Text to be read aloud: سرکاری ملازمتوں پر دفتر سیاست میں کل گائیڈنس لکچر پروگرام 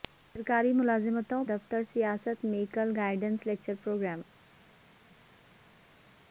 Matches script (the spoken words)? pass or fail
fail